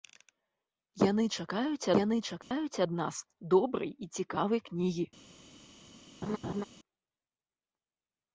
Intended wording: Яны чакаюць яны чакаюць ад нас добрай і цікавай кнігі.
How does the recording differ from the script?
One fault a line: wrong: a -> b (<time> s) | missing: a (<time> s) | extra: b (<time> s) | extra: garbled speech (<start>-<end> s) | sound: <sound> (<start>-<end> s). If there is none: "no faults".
sound: dropout (2.4-2.5 s)
sound: laugh (6.2-6.6 s)